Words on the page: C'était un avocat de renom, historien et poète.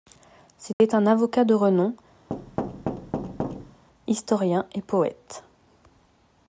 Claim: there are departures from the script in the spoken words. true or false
false